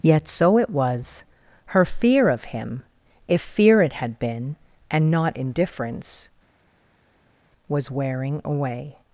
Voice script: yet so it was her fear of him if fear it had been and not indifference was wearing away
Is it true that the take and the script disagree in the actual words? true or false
false